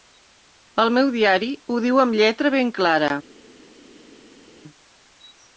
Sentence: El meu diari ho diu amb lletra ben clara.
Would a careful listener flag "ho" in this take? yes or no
no